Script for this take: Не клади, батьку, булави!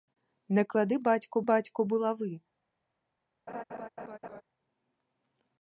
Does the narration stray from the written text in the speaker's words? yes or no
yes